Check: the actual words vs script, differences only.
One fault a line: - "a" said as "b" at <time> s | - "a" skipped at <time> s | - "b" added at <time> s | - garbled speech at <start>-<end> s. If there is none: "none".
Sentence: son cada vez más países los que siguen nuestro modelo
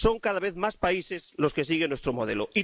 none